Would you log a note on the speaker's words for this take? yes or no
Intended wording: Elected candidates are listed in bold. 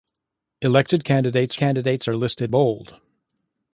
yes